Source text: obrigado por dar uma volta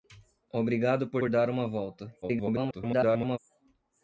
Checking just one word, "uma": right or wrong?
right